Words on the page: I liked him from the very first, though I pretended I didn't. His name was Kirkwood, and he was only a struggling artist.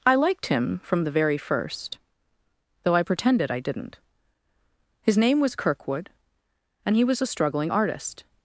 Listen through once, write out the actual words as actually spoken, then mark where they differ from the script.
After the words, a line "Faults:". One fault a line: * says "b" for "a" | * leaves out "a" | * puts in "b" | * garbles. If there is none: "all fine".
I liked him from the very first, though I pretended I didn't. His name was Kirkwood, and he was a struggling artist.
Faults:
* leaves out "only"